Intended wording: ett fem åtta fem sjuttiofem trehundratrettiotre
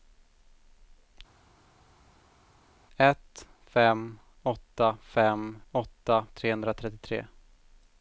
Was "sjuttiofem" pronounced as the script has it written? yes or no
no